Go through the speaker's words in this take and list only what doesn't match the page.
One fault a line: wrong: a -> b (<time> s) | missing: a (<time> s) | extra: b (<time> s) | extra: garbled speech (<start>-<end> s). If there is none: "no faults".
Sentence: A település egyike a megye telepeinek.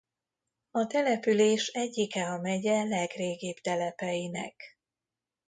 extra: legrégibb (2.8 s)